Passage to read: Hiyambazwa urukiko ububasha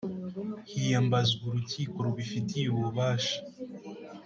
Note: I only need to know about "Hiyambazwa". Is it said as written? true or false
true